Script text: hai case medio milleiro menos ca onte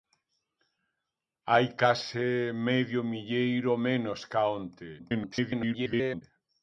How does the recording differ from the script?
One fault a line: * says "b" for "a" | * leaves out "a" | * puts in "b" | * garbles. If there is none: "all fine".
* garbles